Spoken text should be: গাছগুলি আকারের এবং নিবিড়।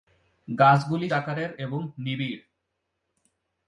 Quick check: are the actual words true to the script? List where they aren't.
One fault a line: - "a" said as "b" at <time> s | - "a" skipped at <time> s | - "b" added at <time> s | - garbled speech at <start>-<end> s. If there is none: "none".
none